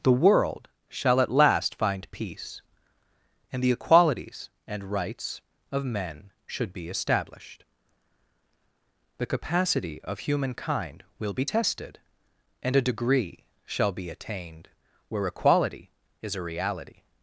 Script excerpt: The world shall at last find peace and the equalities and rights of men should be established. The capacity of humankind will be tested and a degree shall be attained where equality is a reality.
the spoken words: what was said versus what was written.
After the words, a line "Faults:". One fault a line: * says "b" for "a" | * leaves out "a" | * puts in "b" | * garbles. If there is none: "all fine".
The world shall at last find peace and the equalities and rights of men should be established. The capacity of humankind will be tested and a degree shall be attained where equality is a reality.
Faults:
all fine